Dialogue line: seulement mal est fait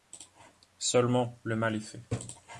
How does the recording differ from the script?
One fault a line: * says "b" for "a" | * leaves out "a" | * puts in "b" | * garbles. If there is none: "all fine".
* puts in "le"